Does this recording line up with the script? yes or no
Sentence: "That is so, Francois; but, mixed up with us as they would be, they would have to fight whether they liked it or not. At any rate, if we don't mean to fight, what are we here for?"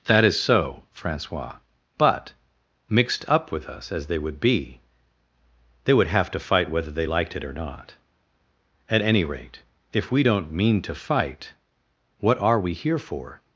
yes